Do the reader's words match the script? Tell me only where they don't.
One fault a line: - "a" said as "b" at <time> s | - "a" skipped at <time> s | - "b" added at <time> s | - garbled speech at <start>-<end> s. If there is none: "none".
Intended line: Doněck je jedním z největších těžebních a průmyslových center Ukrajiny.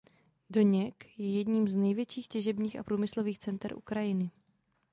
none